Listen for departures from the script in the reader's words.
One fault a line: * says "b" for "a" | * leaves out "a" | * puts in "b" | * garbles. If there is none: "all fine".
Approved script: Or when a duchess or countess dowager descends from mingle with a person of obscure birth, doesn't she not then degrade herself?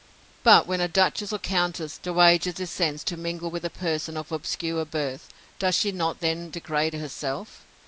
* says "But" for "Or"
* says "to" for "from"
* says "does" for "doesn't"